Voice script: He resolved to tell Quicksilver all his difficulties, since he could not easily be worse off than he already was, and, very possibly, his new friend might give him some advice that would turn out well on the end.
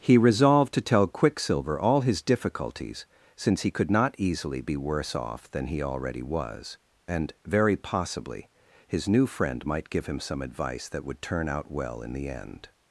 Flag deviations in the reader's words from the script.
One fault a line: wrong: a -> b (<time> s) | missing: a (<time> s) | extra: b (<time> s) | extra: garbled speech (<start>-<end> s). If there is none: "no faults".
wrong: on -> in (12.0 s)